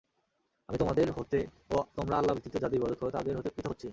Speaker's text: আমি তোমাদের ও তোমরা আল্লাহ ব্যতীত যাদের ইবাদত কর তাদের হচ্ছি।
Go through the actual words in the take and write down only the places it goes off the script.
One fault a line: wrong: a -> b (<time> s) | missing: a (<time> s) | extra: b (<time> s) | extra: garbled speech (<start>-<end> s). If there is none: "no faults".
extra: হতে (1.1 s)
extra: হতে পৃথক (3.4 s)